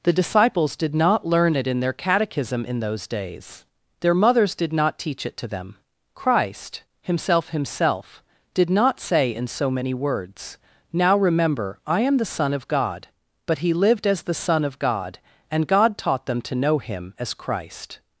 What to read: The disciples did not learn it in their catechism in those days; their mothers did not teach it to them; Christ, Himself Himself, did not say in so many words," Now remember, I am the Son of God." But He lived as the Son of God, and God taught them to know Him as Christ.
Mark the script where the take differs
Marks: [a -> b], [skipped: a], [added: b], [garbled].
The disciples did not learn it in their catechism in those days; their mothers did not teach it to them; Christ, Himself Himself, did not say in so many words," Now remember, I am the Son of God." But He lived as the Son of God, and God taught them to know Him as Christ.